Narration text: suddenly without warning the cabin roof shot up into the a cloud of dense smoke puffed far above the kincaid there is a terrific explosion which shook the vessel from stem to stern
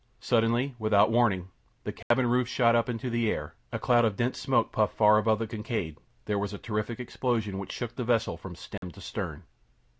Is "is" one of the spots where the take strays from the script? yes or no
yes